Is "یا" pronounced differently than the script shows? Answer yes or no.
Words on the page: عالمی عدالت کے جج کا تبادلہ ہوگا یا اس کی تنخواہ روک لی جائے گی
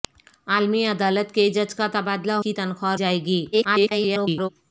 yes